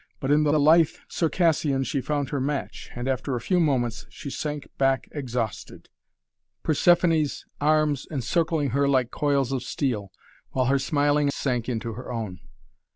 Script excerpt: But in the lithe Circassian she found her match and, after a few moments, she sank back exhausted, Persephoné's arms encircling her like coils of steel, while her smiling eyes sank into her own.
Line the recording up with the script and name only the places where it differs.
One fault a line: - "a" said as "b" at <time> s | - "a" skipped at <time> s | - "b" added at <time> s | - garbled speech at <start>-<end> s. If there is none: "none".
- "the" added at 0.5 s
- "eyes" skipped at 11.3 s